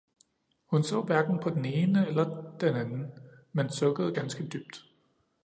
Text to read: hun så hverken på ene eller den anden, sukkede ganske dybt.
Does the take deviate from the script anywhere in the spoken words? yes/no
yes